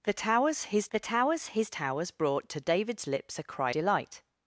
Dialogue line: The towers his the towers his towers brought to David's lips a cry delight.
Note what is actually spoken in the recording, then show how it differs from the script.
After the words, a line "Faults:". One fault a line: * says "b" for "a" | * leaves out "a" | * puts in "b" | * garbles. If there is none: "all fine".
The towers his the towers his towers brought to David's lips a cry delight.
Faults:
all fine